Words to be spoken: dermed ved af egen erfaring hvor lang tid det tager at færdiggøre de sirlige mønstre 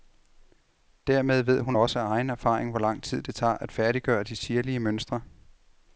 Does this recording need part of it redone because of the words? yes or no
yes